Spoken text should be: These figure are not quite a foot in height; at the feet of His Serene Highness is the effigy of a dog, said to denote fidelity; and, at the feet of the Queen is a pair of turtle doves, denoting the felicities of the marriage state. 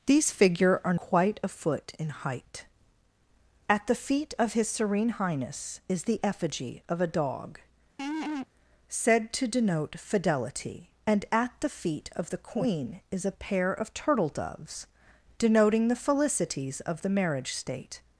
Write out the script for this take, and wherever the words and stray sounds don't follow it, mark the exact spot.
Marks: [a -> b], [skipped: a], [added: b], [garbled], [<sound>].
These figure are [skipped: not] quite a foot in height; at the feet of His Serene Highness is the effigy of a dog, [laugh] said to denote fidelity; and, at the feet of the Queen is a pair of turtle doves, denoting the felicities of the marriage state.